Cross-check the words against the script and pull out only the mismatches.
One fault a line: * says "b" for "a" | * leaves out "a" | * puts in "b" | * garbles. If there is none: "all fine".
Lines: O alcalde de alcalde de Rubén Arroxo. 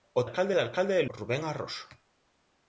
all fine